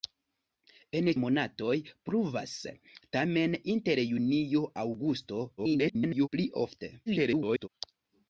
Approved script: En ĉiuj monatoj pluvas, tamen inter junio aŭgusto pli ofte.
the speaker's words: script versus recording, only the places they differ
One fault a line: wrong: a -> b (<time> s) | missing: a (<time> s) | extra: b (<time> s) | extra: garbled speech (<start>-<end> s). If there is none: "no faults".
missing: ĉiuj (1.1 s)
extra: garbled speech (5.6-6.3 s)
extra: garbled speech (7.1-7.7 s)